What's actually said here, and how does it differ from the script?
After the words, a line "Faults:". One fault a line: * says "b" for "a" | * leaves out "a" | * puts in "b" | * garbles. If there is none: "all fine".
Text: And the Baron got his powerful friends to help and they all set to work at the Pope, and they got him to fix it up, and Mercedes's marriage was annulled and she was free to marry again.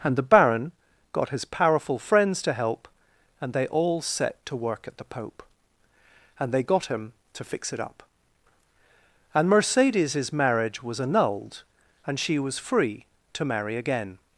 And the Baron got his powerful friends to help and they all set to work at the Pope, and they got him to fix it up, and Mercedes's marriage was annulled and she was free to marry again.
Faults:
all fine